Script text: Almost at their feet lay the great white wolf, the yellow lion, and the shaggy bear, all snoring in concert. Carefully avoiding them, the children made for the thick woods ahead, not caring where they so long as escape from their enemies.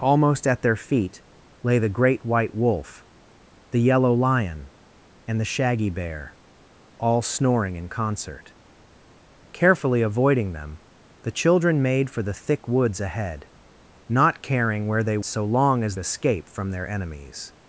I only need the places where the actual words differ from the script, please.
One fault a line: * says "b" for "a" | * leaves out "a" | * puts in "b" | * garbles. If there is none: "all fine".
all fine